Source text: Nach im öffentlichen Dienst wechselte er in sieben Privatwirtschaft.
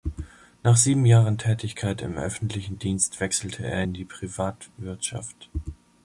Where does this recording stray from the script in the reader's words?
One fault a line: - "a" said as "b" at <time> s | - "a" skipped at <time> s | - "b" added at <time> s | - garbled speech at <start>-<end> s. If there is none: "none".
- "sieben Jahren Tätigkeit" added at 0.8 s
- "sieben" said as "die" at 3.9 s